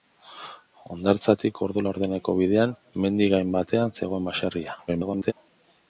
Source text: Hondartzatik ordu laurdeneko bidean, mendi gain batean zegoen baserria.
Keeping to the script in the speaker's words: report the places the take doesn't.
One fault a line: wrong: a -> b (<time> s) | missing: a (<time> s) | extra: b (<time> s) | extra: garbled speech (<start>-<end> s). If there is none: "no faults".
extra: garbled speech (4.9-5.3 s)